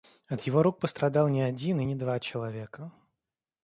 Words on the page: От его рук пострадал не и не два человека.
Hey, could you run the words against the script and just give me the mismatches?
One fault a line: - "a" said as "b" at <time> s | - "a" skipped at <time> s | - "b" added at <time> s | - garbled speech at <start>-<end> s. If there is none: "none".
- "один" added at 1.4 s